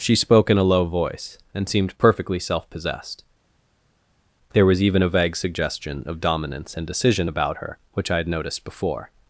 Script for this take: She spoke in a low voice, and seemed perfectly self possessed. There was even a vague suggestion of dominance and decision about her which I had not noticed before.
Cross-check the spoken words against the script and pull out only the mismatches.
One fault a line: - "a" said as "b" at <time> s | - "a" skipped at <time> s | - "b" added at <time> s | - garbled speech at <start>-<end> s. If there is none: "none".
- "not" skipped at 8.3 s